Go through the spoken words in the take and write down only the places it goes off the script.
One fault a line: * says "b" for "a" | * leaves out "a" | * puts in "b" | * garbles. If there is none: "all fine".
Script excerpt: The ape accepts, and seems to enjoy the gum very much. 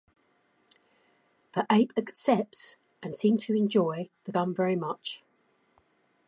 all fine